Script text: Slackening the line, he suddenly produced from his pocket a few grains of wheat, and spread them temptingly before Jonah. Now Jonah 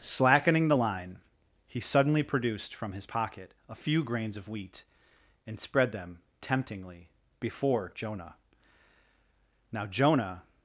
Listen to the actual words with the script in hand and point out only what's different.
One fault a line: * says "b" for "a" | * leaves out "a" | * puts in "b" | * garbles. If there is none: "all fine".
all fine